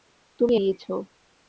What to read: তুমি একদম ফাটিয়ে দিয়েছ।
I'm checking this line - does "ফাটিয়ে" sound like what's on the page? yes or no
no